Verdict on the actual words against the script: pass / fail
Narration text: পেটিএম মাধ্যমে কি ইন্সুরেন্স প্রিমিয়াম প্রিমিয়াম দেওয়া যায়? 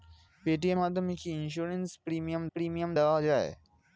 pass